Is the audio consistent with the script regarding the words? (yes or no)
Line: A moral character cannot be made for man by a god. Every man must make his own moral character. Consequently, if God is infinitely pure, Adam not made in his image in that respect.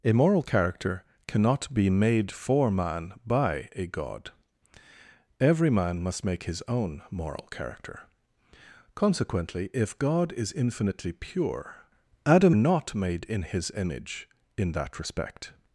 yes